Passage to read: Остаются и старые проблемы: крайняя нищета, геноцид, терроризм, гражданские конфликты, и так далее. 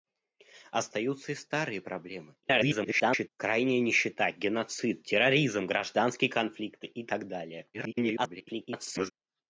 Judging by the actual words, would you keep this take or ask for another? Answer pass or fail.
fail